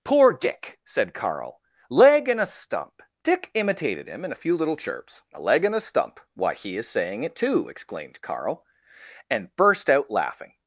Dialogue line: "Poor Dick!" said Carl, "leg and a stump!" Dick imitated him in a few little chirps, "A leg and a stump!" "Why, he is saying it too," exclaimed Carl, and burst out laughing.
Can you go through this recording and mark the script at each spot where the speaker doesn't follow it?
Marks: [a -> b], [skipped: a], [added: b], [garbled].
"Poor Dick!" said Carl, "leg and a stump!" Dick imitated him in a few little chirps, "A leg and a stump!" "Why, he is saying it too," exclaimed Carl, and burst out laughing.